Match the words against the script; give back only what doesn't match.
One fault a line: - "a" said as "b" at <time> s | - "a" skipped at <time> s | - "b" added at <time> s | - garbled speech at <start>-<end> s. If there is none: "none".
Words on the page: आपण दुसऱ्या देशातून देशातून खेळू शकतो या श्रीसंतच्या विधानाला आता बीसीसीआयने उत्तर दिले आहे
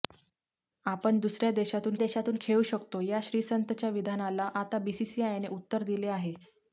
none